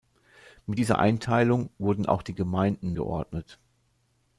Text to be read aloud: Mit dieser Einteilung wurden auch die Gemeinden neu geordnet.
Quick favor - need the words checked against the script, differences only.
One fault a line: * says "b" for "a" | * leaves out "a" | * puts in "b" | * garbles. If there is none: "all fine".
* leaves out "neu"